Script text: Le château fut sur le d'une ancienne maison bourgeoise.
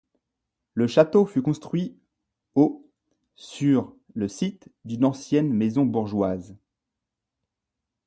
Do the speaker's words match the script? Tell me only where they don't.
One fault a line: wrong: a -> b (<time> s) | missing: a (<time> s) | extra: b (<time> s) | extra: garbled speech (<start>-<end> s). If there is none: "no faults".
extra: construit au (1.4 s)
extra: site (4.3 s)